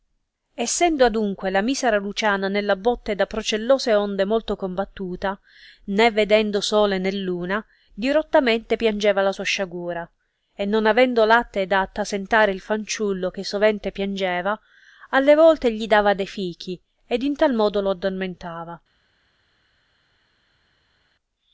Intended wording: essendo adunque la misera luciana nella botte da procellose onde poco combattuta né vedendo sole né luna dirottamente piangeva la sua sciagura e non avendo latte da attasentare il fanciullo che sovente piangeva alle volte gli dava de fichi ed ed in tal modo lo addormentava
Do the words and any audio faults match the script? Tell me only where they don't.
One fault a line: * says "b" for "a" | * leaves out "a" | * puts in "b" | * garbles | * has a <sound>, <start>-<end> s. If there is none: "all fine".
* says "molto" for "poco"
* leaves out "ed"